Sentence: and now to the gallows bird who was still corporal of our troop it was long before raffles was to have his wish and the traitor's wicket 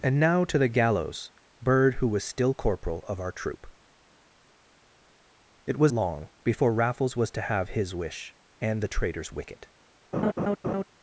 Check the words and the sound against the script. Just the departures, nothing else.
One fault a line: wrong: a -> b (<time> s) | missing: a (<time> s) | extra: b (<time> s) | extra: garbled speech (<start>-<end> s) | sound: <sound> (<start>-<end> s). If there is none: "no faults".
sound: laugh (10.1-10.8 s)